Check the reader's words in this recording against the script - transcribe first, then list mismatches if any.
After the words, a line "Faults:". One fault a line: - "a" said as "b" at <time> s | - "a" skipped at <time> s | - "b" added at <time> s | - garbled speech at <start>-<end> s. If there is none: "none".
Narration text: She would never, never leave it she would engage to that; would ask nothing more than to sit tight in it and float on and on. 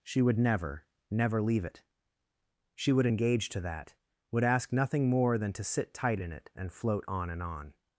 She would never, never leave it she would engage to that; would ask nothing more than to sit tight in it and float on and on.
Faults:
none